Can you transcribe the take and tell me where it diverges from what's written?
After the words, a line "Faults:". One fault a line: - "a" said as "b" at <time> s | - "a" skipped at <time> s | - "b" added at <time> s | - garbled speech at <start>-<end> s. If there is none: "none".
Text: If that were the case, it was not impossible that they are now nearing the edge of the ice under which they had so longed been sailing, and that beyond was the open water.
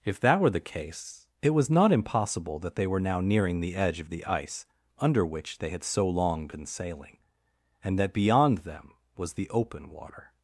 If that were the case, it was not impossible that they were now nearing the edge of the ice under which they had so long been sailing, and that beyond them was the open water.
Faults:
- "are" said as "were" at 2.9 s
- "longed" said as "long" at 6.1 s
- "them" added at 8.6 s